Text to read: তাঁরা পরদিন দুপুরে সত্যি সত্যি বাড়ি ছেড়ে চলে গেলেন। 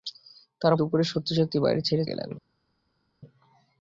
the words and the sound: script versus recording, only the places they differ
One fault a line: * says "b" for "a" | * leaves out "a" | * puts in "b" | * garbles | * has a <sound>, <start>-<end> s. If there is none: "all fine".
* leaves out "পরদিন"
* leaves out "চলে"